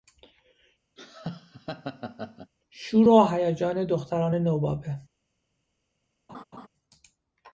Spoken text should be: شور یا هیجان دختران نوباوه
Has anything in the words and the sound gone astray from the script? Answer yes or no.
yes